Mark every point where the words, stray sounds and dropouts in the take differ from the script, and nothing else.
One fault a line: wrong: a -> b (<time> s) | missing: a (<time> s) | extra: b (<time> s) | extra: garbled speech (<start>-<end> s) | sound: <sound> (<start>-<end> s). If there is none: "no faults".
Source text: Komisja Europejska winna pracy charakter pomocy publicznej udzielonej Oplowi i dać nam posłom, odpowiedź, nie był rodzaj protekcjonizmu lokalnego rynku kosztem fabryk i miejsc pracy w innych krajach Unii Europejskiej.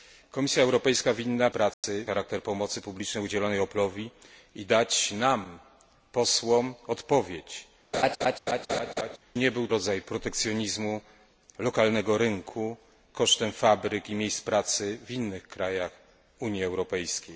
sound: dropout (1.7-1.8 s)
sound: laugh (7.9-9.2 s)